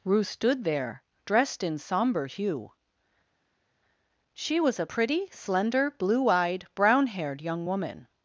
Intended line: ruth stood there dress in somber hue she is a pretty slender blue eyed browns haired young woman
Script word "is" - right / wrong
wrong